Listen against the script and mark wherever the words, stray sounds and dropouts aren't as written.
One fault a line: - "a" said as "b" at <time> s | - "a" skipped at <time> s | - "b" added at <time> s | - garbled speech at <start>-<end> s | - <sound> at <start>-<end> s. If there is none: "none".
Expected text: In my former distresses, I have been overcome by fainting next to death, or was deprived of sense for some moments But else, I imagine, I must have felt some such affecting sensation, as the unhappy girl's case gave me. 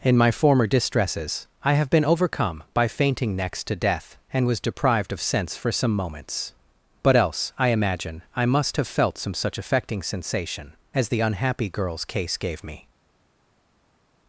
- "or" said as "and" at 4.3 s